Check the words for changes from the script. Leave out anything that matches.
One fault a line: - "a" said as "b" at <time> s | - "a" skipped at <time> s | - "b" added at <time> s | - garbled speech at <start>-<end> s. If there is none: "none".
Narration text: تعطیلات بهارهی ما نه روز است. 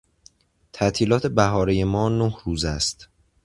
none